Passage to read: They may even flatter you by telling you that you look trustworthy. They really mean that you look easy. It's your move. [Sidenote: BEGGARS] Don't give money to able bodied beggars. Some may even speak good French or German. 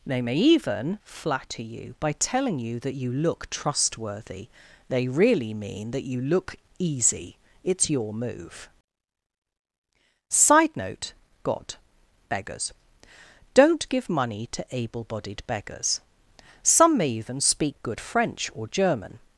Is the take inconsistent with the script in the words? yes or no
yes